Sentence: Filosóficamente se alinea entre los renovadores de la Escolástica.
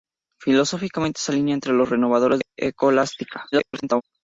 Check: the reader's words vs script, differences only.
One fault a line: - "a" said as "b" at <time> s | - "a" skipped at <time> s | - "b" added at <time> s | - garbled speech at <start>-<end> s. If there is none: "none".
- "de" skipped at 2.4 s
- garbled speech at 3.5-4.0 s